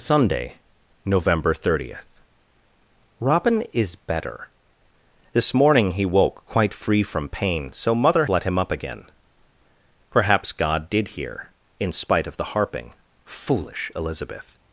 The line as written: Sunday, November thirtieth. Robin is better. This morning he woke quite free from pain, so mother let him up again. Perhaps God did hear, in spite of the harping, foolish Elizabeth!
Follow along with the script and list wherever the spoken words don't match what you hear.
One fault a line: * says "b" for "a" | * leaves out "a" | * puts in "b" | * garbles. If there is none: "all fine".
all fine